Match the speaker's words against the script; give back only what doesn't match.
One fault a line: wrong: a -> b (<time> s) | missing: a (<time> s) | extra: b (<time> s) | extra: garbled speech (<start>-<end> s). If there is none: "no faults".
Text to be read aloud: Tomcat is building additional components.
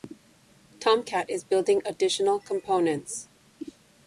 no faults